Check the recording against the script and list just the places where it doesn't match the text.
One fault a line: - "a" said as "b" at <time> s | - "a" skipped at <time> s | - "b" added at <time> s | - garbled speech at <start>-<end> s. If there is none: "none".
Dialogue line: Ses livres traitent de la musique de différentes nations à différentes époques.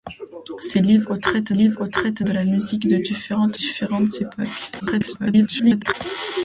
- "livres traitent" added at 1.5 s
- "nations à" skipped at 3.6 s
- garbled speech at 4.8-5.9 s